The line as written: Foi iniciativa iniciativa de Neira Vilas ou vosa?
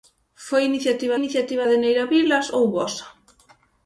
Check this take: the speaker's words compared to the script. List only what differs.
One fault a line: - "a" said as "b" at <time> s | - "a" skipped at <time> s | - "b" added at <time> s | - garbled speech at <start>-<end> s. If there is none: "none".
none